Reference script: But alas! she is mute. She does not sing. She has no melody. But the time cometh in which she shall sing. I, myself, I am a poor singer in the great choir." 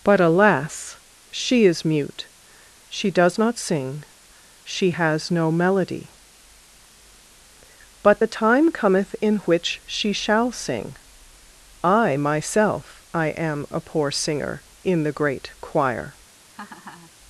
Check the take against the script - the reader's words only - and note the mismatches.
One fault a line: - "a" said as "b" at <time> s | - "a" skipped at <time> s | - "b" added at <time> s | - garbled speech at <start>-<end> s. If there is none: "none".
none